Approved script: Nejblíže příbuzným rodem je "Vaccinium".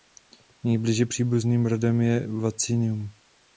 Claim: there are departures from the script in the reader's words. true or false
false